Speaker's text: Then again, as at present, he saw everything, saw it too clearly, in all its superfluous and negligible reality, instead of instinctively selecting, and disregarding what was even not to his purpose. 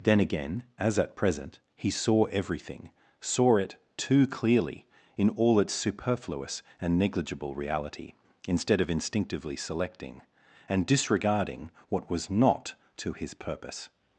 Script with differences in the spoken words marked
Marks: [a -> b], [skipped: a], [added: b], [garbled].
Then again, as at present, he saw everything, saw it too clearly, in all its superfluous and negligible reality, instead of instinctively selecting, and disregarding what was [skipped: even] not to his purpose.